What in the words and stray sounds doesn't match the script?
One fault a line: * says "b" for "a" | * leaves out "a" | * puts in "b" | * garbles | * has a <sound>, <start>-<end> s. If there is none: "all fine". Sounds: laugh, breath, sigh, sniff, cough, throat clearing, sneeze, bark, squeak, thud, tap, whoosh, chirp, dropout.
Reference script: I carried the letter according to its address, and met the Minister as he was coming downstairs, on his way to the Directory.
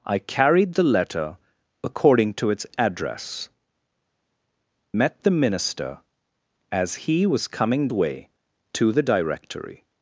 * leaves out "and"
* leaves out "downstairs on his"